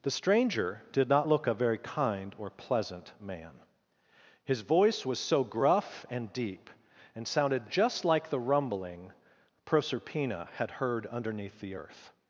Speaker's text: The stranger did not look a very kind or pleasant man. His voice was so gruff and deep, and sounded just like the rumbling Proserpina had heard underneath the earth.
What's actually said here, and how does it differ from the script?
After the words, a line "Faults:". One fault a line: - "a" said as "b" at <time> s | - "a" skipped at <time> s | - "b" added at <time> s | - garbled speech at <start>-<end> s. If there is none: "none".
The stranger did not look a very kind or pleasant man. His voice was so gruff and deep, and sounded just like the rumbling Proserpina had heard underneath the earth.
Faults:
none